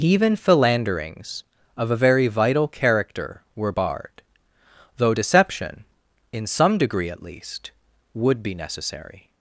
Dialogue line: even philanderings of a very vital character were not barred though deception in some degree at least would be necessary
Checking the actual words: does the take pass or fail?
fail